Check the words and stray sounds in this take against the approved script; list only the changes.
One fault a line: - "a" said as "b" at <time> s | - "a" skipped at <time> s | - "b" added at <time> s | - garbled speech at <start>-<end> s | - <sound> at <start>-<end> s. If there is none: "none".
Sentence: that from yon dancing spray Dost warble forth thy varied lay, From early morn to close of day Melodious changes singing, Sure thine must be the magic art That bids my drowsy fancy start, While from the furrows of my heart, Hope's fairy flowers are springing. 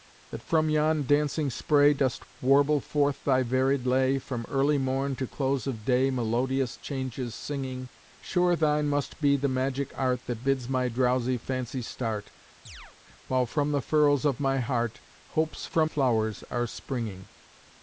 - chirp at 12.7-13.0 s
- "fairy" said as "from" at 15.6 s